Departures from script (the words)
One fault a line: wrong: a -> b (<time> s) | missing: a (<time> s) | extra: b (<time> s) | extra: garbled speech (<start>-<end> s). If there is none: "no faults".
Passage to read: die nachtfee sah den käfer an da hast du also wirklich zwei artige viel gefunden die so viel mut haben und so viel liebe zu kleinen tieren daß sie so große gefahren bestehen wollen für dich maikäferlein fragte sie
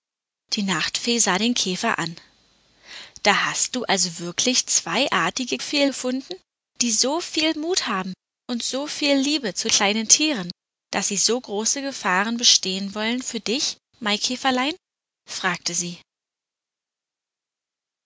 no faults